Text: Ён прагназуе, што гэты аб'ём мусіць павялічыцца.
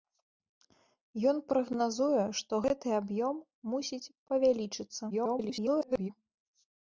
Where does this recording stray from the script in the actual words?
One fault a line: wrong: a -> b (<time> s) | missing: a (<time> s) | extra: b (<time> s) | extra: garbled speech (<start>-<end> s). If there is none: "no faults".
extra: garbled speech (5.1-6.1 s)